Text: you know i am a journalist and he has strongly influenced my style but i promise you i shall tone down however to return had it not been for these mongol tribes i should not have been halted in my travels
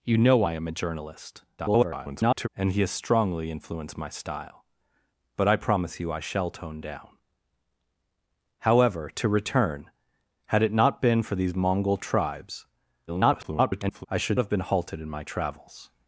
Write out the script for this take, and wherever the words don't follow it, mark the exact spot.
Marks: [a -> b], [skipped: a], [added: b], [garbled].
you know i am a journalist [garbled] and he has strongly influenced my style but i promise you i shall tone down however to return had it not been for these mongol tribes [garbled] i should [skipped: not] have been halted in my travels